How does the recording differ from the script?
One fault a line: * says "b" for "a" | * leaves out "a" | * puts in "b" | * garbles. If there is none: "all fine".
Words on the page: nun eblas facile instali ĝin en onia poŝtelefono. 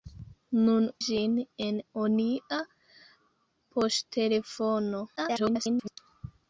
* leaves out "eblas facile instali"
* garbles